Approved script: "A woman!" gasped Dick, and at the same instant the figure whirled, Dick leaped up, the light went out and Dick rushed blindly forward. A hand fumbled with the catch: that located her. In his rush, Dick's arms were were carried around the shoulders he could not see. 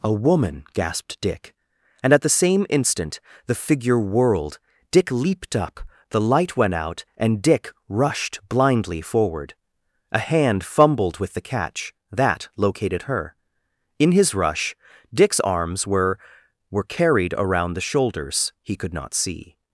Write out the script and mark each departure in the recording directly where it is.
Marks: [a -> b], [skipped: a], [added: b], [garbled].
"A woman!" gasped Dick, and at the same instant the figure whirled, Dick leaped up, the light went out and Dick rushed blindly forward. A hand fumbled with the catch: that located her. In his rush, Dick's arms were were carried around the shoulders he could not see.